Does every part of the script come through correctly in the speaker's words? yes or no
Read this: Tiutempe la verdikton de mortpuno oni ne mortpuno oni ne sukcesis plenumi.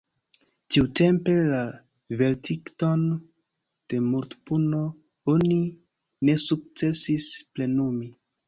no